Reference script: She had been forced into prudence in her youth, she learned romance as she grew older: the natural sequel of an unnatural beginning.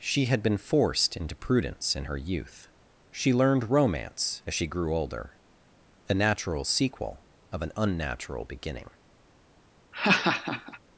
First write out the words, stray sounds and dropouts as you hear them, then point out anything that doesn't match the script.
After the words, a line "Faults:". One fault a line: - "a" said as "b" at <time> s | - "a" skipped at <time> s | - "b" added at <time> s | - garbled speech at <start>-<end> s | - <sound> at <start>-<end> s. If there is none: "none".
She had been forced into prudence in her youth, she learned romance as she grew older: a natural sequel of an unnatural beginning.
Faults:
- "the" said as "a" at 6.1 s
- laugh at 9.9-10.8 s